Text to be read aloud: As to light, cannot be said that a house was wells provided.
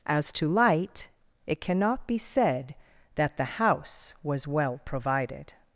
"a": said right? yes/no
no